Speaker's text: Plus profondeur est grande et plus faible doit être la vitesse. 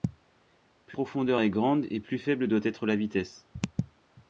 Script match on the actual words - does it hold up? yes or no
yes